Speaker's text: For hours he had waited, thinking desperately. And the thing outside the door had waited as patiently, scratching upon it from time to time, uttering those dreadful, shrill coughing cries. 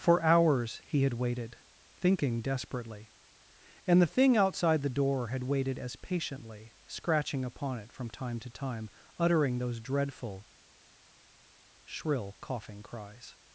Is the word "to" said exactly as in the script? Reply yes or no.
yes